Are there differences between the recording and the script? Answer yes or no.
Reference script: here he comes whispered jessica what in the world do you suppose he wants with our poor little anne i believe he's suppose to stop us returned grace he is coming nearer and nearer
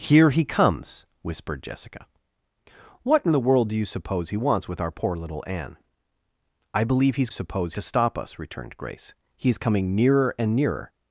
no